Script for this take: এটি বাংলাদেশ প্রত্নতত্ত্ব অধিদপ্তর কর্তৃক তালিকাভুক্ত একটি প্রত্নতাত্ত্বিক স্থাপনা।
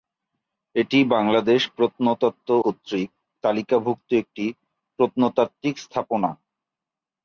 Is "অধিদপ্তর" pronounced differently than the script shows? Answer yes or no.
yes